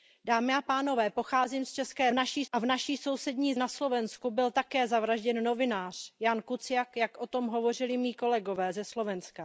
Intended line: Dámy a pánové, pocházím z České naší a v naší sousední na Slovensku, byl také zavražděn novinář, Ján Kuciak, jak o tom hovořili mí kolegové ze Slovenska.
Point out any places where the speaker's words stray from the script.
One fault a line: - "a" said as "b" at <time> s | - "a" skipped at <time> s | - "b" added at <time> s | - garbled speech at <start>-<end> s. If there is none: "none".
none